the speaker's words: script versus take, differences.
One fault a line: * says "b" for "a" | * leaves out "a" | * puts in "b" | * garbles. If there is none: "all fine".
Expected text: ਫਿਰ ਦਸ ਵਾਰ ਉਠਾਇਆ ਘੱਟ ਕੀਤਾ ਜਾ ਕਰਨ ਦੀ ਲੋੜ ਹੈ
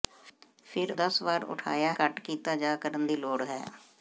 all fine